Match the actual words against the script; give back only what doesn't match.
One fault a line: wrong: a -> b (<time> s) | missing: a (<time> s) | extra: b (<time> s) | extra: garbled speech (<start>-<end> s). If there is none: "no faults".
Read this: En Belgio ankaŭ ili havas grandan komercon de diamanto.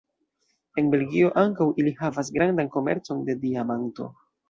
no faults